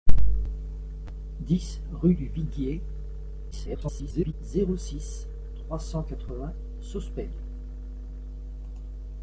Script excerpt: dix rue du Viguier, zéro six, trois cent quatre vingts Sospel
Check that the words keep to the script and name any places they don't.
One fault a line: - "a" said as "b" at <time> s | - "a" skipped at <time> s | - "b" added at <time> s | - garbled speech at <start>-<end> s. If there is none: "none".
- garbled speech at 3.5-4.3 s